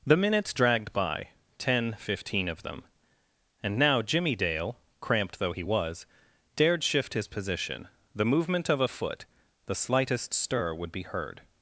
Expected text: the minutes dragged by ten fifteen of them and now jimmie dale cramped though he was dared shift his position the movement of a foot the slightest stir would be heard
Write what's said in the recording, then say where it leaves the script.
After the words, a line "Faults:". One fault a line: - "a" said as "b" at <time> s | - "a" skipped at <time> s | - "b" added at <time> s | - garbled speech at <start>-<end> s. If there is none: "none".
the minutes dragged by ten fifteen of them and now jimmie dale cramped though he was dared shift his position the movement of a foot the slightest stir would be heard
Faults:
none